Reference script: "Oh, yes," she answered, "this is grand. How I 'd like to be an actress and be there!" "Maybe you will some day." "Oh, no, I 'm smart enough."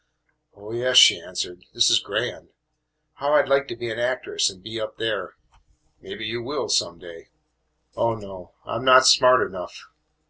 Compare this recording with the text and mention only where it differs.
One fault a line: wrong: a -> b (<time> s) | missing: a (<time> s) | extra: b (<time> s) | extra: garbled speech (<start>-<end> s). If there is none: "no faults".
extra: up (4.8 s)
extra: not (8.9 s)